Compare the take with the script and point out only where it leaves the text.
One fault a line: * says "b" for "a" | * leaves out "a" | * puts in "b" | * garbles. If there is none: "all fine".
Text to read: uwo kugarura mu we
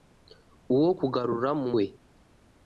all fine